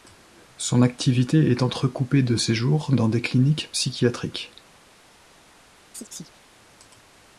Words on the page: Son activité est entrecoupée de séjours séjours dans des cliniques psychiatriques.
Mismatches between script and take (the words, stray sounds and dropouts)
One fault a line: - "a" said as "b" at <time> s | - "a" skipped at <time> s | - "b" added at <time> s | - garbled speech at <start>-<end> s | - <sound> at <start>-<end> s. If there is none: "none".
- "séjours" skipped at 2.9 s
- chirp at 5.9-6.4 s